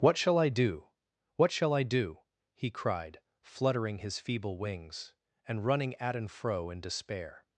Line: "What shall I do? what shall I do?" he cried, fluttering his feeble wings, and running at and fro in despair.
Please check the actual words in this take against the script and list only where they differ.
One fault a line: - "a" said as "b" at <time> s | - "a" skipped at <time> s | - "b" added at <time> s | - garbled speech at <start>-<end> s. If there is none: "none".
none